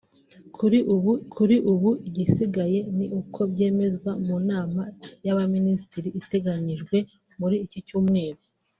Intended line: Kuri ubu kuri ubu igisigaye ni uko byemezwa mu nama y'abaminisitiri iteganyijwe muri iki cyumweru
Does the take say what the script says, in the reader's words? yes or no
yes